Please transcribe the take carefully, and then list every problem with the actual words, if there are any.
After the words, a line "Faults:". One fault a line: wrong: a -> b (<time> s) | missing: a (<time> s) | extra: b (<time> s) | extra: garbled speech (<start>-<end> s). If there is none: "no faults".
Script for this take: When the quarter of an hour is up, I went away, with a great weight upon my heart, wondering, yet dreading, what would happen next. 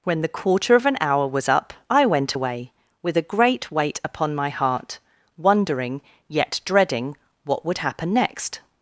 When the quarter of an hour was up, I went away, with a great weight upon my heart, wondering, yet dreading, what would happen next.
Faults:
wrong: is -> was (1.3 s)